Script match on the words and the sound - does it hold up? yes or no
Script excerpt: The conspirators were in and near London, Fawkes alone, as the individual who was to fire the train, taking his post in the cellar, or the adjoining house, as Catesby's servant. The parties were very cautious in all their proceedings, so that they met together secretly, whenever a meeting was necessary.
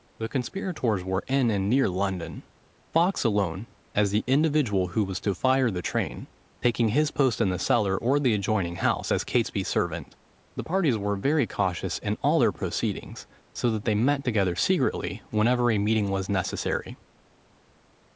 yes